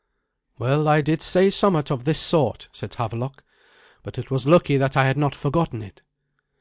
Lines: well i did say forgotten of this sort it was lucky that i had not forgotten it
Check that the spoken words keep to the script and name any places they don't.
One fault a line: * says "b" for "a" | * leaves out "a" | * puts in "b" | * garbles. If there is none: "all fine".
* says "somewhat" for "forgotten"
* puts in "said havelok but"